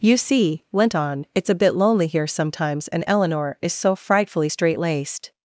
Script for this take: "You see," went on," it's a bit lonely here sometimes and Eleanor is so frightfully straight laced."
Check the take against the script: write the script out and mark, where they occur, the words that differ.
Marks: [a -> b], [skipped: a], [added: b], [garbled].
"You see," went on," it's a bit lonely here sometimes and Eleanor is so frightfully straight laced."